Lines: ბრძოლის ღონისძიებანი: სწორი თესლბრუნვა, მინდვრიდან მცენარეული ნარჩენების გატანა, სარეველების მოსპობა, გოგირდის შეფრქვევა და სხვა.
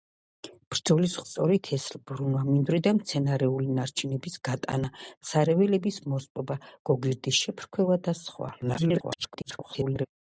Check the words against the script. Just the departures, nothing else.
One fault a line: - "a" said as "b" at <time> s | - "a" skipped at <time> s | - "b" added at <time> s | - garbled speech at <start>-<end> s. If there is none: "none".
- "ღონისძიებანი" skipped at 1.2 s
- garbled speech at 8.6-10.1 s